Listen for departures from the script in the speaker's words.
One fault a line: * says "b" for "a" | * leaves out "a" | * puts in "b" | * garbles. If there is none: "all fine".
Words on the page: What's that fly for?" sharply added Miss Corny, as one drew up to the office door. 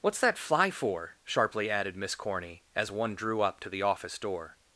all fine